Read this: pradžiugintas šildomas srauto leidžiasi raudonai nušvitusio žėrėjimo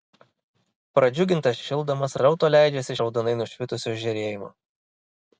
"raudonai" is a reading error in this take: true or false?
false